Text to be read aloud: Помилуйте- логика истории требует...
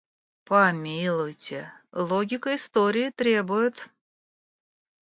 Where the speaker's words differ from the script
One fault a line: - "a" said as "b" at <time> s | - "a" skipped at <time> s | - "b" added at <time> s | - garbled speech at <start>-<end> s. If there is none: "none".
none